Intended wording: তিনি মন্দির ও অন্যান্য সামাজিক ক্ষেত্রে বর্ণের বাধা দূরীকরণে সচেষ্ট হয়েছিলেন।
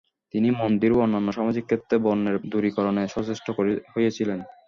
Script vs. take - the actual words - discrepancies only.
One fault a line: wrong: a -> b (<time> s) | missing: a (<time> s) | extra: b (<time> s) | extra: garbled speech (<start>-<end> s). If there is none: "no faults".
missing: বাধা (2.4 s)